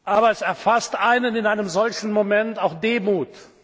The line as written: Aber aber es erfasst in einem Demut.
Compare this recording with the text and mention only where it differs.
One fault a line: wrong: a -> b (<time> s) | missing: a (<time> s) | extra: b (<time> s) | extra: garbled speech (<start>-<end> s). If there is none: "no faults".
missing: aber (0.3 s)
extra: einen (0.9 s)
extra: solchen Moment auch (1.7 s)